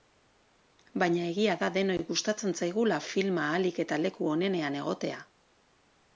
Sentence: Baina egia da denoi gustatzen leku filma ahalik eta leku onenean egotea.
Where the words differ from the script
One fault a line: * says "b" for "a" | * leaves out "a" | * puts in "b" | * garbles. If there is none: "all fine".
* says "zaigula" for "leku"